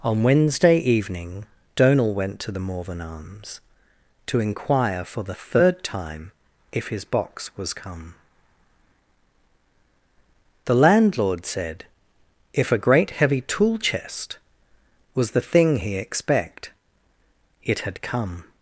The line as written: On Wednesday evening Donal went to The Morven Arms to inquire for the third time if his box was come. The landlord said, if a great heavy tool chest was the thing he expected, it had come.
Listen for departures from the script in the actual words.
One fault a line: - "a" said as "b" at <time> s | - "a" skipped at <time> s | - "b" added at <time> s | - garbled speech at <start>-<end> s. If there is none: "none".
- "expected" said as "expect" at 16.0 s